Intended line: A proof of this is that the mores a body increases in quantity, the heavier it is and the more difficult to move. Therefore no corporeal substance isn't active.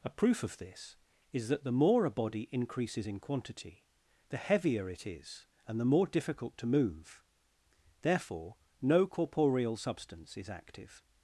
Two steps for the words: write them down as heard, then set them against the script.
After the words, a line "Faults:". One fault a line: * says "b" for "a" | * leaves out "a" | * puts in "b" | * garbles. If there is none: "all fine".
A proof of this is that the more a body increases in quantity, the heavier it is and the more difficult to move. Therefore no corporeal substance is active.
Faults:
* says "more" for "mores"
* says "is" for "isn't"